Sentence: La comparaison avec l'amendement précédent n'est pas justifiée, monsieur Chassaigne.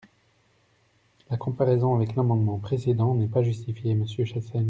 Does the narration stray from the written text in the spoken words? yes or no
no